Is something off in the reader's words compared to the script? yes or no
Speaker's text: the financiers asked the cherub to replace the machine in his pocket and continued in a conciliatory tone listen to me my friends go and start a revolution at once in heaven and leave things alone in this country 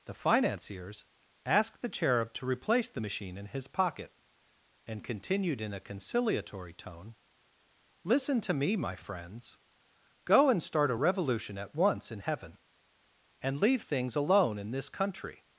no